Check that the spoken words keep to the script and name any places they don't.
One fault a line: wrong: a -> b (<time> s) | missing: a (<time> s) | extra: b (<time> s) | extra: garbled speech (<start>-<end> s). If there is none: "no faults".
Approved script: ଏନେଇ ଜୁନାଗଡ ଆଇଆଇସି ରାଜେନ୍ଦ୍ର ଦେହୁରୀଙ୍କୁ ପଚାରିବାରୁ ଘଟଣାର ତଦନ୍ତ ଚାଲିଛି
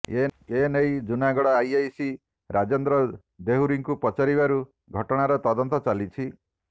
no faults